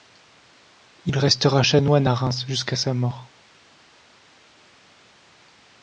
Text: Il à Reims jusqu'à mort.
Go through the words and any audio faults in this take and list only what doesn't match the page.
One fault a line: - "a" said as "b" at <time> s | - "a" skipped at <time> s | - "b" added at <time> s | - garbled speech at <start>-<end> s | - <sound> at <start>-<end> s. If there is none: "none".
- "restera chanoine" added at 1.2 s
- "sa" added at 2.8 s